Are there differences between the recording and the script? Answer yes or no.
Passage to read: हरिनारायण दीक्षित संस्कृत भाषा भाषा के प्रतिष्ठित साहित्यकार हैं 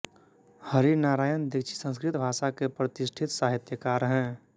yes